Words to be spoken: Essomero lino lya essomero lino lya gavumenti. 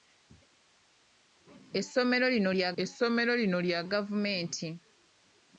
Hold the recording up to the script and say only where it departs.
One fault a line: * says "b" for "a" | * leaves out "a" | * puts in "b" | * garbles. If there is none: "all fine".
all fine